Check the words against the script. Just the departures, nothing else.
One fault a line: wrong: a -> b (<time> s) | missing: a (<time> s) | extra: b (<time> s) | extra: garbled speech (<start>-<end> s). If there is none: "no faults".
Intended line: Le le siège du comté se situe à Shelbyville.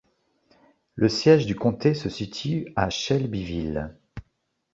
missing: le (1.1 s)